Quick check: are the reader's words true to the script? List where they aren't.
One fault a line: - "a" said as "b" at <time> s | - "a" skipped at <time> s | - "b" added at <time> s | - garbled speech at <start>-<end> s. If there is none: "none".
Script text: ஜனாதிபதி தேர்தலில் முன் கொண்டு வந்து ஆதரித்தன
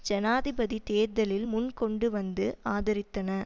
none